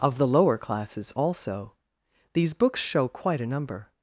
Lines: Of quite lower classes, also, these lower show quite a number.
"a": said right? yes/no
yes